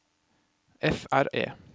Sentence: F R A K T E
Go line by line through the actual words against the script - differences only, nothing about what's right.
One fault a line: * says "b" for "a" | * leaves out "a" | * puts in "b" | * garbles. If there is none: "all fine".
* leaves out "A K T"